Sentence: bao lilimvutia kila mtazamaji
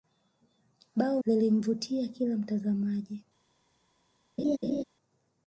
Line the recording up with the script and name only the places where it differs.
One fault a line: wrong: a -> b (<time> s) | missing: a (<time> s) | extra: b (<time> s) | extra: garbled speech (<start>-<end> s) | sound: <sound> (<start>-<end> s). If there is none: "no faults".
sound: laugh (4.4-4.8 s)